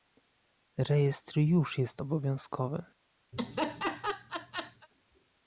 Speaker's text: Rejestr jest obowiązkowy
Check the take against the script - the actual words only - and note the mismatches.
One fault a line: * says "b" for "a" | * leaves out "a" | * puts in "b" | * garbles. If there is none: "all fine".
* puts in "już"